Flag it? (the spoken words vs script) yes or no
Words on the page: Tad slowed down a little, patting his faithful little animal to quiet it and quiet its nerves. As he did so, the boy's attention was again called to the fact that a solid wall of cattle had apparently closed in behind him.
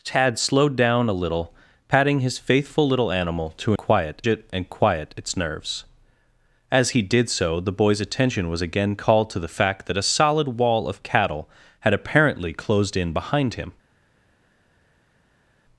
no